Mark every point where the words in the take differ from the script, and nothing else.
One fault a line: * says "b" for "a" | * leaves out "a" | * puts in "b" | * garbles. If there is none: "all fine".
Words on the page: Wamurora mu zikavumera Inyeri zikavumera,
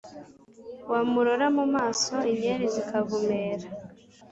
* says "maso" for "zikavumera"